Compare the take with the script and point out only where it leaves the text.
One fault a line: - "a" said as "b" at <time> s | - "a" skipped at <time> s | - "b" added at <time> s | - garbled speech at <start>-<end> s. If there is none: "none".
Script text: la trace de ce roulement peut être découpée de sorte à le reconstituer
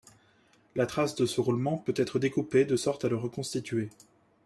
none